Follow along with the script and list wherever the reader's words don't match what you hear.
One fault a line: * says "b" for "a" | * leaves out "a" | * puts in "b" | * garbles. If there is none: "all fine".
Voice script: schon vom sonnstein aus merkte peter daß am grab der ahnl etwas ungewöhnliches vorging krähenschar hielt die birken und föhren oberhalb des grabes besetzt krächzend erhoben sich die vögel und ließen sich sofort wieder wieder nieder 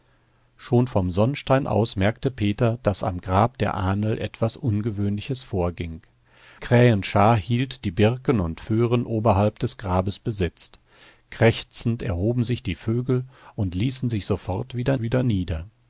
all fine